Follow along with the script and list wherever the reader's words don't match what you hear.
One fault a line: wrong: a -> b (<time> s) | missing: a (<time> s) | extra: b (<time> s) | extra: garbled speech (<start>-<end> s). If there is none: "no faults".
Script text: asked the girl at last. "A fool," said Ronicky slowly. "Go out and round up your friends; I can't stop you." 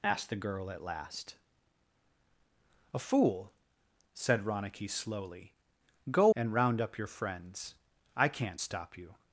missing: out (6.3 s)